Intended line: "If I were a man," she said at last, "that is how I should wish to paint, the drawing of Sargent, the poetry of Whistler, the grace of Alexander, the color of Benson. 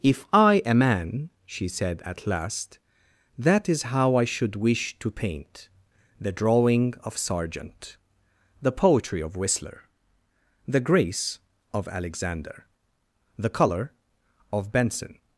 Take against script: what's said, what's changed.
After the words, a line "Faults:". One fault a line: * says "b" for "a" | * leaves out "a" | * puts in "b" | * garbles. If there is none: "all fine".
"If I a man," she said at last, "that is how I should wish to paint, the drawing of Sargent, the poetry of Whistler, the grace of Alexander, the color of Benson.
Faults:
* leaves out "were"